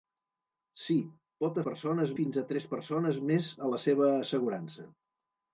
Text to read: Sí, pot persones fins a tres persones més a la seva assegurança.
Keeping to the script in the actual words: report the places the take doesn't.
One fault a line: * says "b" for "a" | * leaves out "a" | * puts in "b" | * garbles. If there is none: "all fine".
all fine